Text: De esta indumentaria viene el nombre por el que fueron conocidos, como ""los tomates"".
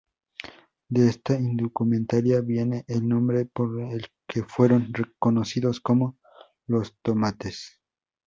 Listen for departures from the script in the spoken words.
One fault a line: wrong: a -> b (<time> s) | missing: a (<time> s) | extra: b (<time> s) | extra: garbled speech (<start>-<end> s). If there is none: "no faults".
no faults